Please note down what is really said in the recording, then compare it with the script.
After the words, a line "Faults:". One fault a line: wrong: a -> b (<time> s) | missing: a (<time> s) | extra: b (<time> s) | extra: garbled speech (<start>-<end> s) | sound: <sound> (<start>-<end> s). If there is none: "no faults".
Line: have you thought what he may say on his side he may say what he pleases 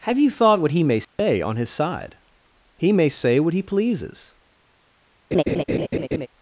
have you thought what he may say on his side he may say what he pleases
Faults:
sound: dropout (1.0-1.2 s)
sound: laugh (5.3-6.3 s)